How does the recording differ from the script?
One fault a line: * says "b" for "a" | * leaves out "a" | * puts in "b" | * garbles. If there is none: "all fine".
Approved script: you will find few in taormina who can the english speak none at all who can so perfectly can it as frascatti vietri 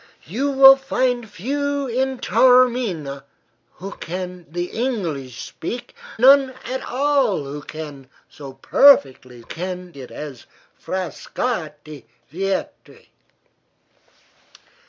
all fine